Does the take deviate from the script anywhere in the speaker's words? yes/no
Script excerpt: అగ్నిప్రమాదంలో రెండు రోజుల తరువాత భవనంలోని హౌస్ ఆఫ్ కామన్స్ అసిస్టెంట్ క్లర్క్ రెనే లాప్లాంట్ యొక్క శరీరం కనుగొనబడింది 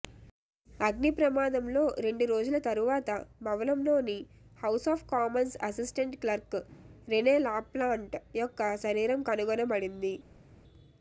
no